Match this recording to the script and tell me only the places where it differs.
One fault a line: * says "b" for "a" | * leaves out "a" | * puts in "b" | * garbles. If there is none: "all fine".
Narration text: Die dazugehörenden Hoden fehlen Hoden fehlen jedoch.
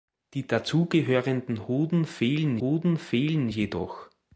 all fine